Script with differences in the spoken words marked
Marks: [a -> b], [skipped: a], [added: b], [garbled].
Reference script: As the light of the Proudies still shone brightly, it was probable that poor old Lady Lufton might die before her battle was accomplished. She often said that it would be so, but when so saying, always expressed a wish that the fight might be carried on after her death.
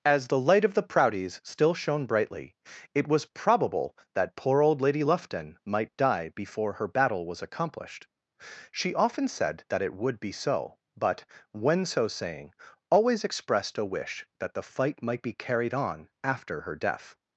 As the light of the Proudies still shone brightly, it was probable that poor old Lady Lufton might die before her battle was accomplished. She often said that it would be so, but when so saying, always expressed a wish that the fight might be carried on after her death.